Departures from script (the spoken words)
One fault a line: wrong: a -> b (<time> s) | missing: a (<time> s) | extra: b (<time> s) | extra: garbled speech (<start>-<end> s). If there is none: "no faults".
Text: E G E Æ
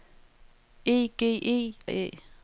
no faults